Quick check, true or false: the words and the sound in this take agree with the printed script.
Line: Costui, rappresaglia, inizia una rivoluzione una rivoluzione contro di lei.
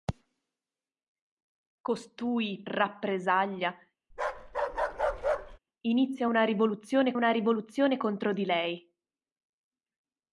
false